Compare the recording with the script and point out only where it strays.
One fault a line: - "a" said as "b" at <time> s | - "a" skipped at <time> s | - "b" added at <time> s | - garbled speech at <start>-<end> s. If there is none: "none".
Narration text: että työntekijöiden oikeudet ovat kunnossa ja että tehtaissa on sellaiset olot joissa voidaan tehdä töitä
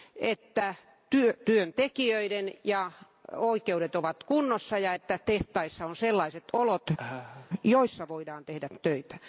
none